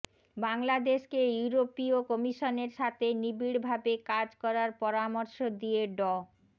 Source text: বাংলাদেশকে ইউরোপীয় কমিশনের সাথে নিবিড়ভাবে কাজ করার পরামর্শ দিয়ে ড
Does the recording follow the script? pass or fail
pass